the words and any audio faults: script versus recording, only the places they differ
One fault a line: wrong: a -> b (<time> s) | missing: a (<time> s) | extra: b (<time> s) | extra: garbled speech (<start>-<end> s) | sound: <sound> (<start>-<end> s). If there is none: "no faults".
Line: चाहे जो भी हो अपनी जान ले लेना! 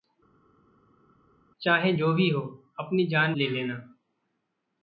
no faults